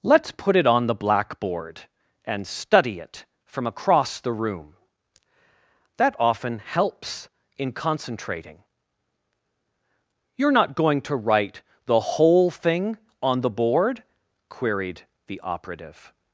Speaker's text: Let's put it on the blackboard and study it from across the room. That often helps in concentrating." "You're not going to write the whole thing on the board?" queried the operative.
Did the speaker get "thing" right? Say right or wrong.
right